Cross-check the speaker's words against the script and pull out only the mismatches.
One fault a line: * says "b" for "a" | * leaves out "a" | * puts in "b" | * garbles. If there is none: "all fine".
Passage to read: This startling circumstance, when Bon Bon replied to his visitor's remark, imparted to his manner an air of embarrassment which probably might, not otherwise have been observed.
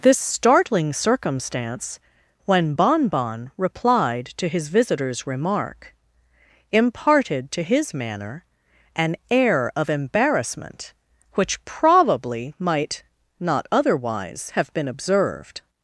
all fine